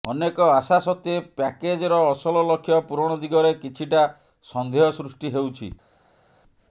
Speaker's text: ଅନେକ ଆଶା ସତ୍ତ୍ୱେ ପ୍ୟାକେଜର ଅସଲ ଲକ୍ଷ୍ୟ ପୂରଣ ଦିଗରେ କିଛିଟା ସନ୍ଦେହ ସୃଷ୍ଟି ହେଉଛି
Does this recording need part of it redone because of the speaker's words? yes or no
no